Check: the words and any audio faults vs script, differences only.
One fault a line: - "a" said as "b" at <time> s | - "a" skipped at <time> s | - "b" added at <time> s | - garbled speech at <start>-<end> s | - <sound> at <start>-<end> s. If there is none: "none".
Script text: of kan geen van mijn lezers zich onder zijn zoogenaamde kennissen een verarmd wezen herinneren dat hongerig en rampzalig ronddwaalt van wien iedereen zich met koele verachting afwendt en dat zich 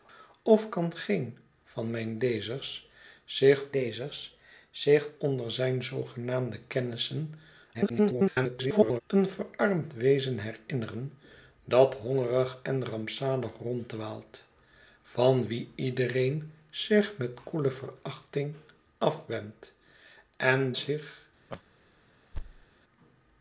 - "lezers zich" added at 3.7 s
- garbled speech at 7.7-9.0 s
- "dat" skipped at 20.7 s
- laugh at 21.5-21.6 s
- thud at 22.3-22.7 s